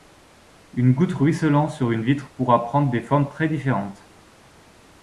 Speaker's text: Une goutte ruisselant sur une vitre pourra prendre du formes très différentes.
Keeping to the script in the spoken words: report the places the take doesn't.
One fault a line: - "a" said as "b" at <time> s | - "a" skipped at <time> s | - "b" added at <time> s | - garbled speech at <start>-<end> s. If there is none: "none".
- "du" said as "des" at 2.9 s